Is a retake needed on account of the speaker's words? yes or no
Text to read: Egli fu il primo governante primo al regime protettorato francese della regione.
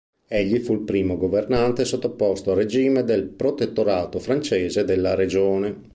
yes